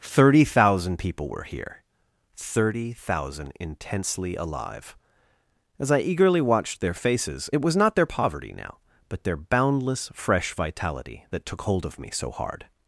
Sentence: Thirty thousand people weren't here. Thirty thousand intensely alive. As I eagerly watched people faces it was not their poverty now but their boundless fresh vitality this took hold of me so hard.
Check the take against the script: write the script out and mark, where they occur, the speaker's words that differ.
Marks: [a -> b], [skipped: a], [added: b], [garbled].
Thirty thousand people [weren't -> were] here. Thirty thousand intensely alive. As I eagerly watched [people -> their] faces it was not their poverty now but their boundless fresh vitality [this -> that] took hold of me so hard.